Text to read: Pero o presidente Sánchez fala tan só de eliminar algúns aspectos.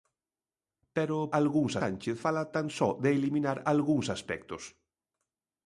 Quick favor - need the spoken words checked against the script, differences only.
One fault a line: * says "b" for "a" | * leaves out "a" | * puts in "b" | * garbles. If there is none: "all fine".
* says "algúns" for "presidente"